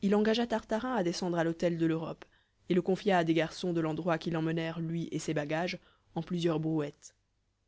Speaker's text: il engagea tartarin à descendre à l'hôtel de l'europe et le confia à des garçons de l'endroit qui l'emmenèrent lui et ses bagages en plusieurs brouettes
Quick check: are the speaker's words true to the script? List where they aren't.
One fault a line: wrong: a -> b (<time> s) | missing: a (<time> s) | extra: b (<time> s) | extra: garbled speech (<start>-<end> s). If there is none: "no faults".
no faults